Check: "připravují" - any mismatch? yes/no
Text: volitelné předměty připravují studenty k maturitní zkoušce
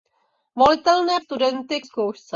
yes